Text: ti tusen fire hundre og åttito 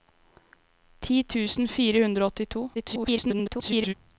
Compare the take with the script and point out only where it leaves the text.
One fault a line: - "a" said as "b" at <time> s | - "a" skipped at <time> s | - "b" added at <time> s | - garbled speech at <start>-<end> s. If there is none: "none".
- garbled speech at 2.7-3.9 s